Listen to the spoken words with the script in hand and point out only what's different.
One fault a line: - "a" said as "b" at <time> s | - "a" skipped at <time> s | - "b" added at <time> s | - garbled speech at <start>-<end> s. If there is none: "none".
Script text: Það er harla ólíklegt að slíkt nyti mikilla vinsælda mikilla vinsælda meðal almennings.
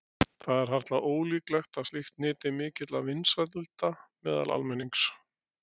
- "mikilla vinsælda" skipped at 3.9 s